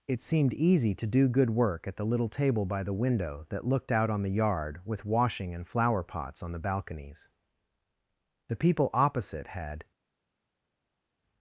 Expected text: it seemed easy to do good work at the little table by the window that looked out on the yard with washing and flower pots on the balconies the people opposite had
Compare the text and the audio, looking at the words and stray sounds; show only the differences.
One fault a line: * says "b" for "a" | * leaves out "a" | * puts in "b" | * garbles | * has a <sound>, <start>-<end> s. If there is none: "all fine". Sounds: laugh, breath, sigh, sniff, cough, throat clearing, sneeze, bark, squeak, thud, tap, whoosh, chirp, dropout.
all fine